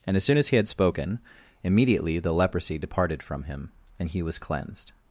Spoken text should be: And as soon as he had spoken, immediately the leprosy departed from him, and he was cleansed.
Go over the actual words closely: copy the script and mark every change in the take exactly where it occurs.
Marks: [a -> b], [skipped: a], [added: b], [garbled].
And as soon as he had spoken, immediately the leprosy departed from him, and he was cleansed.